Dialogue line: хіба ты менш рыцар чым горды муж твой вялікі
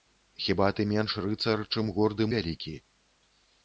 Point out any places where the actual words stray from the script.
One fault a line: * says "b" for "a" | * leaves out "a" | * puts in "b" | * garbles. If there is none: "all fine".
* leaves out "муж твой"